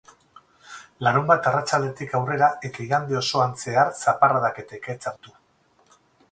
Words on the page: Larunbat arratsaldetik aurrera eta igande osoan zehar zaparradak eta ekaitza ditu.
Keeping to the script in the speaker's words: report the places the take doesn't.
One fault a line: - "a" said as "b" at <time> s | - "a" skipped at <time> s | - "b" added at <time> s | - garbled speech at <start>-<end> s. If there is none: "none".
none